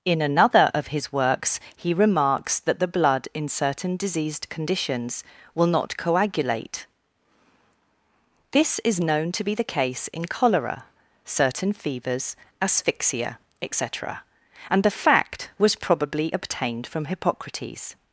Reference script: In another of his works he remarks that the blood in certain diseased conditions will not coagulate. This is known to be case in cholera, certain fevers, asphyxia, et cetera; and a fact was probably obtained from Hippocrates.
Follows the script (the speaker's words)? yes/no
no